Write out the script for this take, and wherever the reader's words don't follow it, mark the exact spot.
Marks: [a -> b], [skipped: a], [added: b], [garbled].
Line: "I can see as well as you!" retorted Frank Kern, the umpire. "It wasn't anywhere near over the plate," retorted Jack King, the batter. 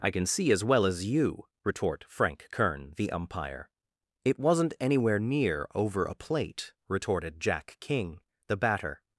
"I can see as well as you!" [retorted -> retort] Frank Kern, the umpire. "It wasn't anywhere near over [the -> a] plate," retorted Jack King, the batter.